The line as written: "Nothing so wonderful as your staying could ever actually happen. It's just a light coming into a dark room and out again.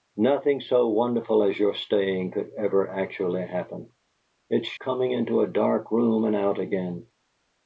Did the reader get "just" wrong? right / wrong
wrong